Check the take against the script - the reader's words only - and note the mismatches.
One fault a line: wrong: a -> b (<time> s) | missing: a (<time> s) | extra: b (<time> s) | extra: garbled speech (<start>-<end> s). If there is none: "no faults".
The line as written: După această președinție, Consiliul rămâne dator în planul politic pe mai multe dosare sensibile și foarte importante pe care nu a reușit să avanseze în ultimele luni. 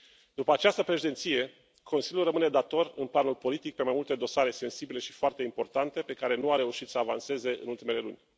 no faults